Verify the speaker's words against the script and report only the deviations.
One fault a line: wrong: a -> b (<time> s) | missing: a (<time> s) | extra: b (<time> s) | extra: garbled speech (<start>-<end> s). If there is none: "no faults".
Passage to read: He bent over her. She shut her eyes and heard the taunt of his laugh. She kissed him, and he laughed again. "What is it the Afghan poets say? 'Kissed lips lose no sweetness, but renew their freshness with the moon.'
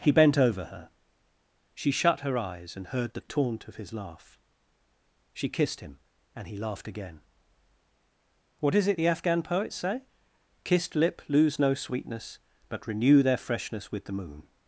wrong: lips -> lip (10.9 s)